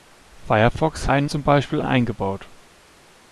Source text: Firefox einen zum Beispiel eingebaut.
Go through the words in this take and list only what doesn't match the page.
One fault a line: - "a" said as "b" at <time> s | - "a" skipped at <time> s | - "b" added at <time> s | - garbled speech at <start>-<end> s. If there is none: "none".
none